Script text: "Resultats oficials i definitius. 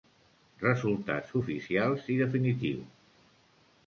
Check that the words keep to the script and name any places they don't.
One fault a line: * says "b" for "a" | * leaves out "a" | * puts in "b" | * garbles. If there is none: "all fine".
all fine